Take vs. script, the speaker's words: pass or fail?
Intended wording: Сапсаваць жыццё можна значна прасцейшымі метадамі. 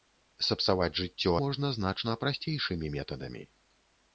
pass